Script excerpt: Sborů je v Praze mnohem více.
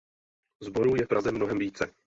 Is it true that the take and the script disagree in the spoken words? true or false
false